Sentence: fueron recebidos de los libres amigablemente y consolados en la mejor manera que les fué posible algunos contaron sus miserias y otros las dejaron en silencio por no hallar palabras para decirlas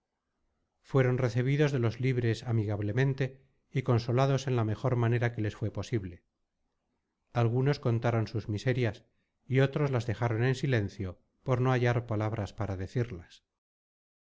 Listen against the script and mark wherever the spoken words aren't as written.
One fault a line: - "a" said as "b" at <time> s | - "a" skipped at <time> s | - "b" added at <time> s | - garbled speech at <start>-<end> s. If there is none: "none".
none